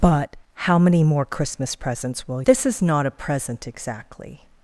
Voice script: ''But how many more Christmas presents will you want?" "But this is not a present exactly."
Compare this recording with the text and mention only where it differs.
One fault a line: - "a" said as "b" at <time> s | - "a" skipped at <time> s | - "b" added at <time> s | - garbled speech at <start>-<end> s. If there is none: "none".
- "you want But" skipped at 2.4 s